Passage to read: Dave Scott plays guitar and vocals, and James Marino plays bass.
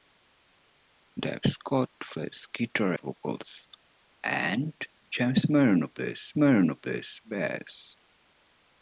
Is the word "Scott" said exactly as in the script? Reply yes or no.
yes